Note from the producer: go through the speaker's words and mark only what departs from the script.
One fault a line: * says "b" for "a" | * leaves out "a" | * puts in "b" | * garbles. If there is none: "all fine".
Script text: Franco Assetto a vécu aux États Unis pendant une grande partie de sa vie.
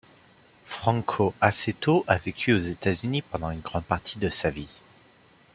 all fine